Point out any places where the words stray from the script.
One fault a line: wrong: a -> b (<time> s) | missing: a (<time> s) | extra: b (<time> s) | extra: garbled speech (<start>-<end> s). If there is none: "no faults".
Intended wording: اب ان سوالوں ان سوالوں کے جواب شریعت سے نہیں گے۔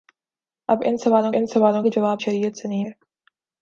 no faults